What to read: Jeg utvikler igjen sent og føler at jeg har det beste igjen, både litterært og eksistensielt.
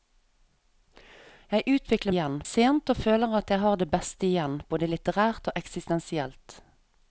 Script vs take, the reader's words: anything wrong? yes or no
no